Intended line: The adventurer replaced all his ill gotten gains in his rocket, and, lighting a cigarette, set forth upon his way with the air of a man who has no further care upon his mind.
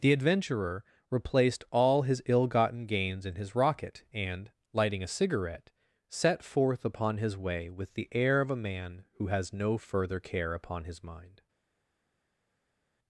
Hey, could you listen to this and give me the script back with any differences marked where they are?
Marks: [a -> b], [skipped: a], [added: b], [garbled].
The adventurer replaced all his ill gotten gains in his rocket, and, lighting a cigarette, set forth upon his way with the air of a man who has no further care upon his mind.